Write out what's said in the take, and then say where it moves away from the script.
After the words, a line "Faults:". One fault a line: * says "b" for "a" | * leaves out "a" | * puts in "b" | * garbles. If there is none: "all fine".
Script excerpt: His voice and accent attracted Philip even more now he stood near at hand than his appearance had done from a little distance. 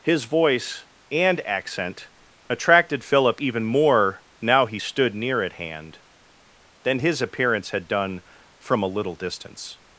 His voice and accent attracted Philip even more now he stood near at hand than his appearance had done from a little distance.
Faults:
all fine